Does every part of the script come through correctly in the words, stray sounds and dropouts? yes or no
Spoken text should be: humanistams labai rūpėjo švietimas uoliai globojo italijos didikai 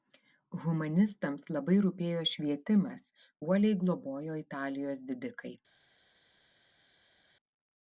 yes